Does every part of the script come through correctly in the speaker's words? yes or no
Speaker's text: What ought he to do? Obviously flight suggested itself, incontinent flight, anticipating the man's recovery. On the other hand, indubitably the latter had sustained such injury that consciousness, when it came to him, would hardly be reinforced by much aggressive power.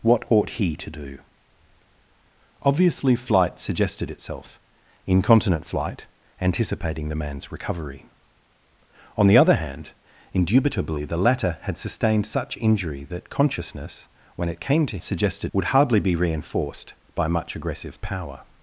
no